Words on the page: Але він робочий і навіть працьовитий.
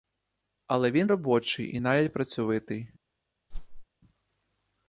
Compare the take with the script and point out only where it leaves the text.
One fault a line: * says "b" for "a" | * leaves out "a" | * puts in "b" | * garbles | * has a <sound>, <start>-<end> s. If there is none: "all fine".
* has a whoosh, 3.5-3.9 s